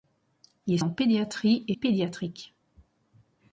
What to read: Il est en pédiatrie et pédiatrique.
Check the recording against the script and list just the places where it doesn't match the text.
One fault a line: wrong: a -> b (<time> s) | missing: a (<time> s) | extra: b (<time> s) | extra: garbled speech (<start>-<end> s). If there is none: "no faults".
no faults